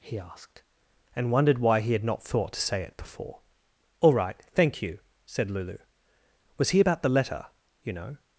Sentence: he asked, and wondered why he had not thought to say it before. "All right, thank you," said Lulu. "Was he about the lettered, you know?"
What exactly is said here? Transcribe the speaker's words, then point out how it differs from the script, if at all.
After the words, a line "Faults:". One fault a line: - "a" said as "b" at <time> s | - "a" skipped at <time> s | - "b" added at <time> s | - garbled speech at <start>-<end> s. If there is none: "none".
he asked, and wondered why he had not thought to say it before. "All right, thank you," said Lulu. "Was he about the letter, you know?"
Faults:
- "lettered" said as "letter" at 7.1 s